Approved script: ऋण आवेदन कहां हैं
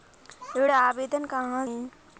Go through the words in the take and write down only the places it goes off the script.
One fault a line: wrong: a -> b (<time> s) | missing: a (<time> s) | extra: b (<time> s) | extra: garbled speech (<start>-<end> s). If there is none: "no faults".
no faults